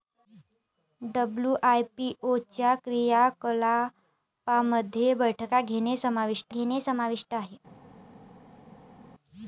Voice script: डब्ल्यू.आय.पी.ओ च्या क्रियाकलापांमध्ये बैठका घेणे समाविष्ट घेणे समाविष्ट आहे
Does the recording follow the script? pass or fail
pass